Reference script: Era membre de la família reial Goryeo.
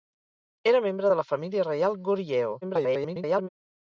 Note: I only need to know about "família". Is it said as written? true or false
true